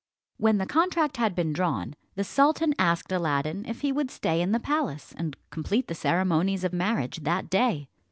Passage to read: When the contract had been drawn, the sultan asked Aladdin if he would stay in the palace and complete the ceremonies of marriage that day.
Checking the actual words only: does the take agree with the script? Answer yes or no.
yes